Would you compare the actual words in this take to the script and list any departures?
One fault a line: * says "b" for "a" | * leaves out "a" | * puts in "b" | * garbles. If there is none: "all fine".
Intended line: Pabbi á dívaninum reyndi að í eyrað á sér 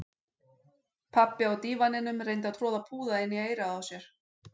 * puts in "troða púða inn"